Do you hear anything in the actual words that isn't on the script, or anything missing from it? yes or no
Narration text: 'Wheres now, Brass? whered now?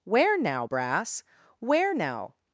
yes